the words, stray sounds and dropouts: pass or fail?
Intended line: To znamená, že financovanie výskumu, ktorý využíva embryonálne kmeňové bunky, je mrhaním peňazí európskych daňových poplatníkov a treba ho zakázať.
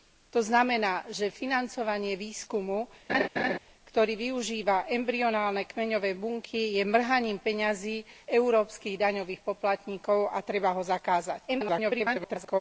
fail